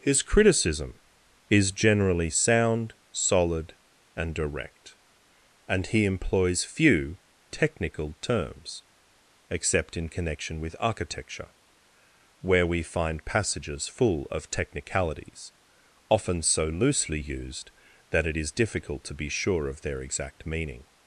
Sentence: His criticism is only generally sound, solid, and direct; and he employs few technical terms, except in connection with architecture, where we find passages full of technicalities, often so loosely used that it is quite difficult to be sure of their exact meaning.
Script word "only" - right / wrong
wrong